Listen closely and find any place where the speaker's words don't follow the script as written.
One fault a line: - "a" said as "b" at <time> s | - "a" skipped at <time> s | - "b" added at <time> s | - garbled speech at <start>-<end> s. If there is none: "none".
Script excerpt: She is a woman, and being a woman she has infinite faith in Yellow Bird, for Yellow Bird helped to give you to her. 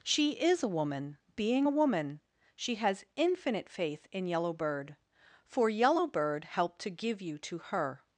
- "and" skipped at 1.2 s